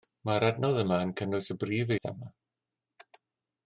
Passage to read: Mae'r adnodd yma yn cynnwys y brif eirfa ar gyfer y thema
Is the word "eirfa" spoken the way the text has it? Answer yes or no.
no